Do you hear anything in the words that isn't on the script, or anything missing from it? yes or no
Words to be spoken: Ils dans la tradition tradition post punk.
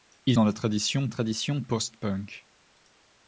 no